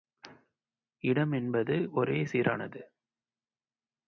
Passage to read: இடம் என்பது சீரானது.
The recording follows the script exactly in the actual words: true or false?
false